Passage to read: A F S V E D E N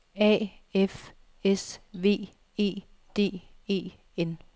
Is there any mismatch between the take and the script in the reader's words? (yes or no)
no